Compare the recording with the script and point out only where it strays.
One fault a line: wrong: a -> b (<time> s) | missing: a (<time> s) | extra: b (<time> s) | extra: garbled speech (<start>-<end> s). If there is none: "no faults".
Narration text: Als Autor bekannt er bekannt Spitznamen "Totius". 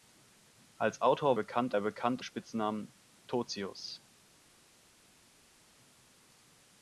no faults